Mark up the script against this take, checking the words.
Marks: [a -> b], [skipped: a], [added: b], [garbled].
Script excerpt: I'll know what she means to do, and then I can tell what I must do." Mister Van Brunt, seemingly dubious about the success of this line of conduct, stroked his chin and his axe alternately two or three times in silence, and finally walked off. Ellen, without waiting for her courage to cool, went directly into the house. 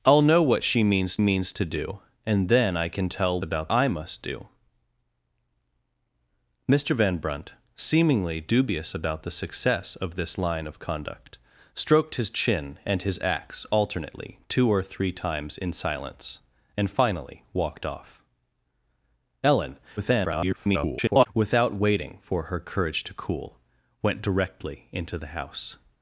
I'll know what she means [added: means] to do, and then I can tell [what -> about] I must do." Mister Van Brunt, seemingly dubious about the success of this line of conduct, stroked his chin and his axe alternately two or three times in silence, and finally walked off. Ellen, [garbled] without waiting for her courage to cool, went directly into the house.